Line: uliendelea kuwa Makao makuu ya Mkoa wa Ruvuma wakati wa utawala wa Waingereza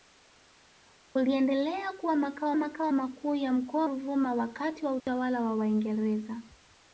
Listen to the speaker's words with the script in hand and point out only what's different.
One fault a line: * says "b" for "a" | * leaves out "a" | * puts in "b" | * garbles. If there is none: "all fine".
* puts in "Makao"
* leaves out "wa"